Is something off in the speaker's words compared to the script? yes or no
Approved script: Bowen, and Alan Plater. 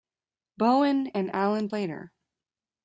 no